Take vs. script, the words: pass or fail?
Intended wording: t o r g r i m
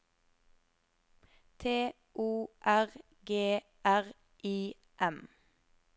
pass